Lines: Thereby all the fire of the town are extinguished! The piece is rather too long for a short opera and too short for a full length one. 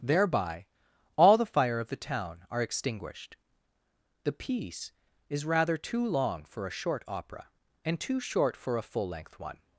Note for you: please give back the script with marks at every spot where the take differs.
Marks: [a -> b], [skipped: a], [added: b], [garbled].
Thereby all the fire of the town are extinguished! The piece is rather too long for a short opera and too short for a full length one.